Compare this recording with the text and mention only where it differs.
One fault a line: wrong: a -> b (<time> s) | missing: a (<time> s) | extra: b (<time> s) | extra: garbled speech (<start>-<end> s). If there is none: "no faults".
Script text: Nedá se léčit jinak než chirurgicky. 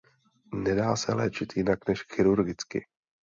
no faults